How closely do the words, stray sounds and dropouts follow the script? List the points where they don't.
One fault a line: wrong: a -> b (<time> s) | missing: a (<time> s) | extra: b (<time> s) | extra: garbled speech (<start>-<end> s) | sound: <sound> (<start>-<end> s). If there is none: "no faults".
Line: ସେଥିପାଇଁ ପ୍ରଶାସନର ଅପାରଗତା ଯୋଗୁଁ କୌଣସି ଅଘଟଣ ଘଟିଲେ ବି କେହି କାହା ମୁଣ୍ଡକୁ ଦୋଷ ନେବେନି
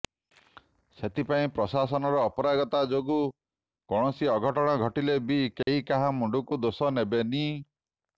sound: dropout (5.6-5.7 s)